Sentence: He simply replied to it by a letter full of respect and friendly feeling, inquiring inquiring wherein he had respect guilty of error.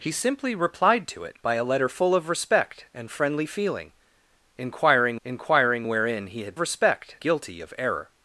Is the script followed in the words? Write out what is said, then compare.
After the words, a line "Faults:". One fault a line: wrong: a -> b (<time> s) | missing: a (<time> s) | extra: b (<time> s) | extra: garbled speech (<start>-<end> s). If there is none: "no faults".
He simply replied to it by a letter full of respect and friendly feeling, inquiring inquiring wherein he had respect guilty of error.
Faults:
no faults